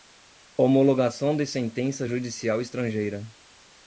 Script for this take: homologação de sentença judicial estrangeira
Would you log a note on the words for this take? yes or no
no